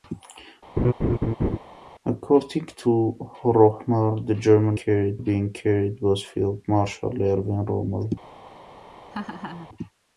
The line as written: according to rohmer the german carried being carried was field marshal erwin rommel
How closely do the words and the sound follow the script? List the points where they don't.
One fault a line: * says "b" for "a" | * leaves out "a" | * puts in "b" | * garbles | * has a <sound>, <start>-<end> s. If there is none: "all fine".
* has a laugh, 0.8-1.6 s
* has a laugh, 9.1-9.7 s